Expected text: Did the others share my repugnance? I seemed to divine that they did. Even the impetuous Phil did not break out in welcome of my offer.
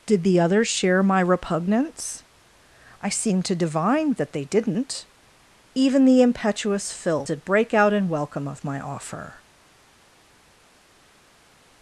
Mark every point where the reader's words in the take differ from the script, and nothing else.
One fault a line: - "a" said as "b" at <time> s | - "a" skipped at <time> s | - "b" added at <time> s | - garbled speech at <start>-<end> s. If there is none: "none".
- "did" said as "didn't" at 4.5 s
- "not" skipped at 7.4 s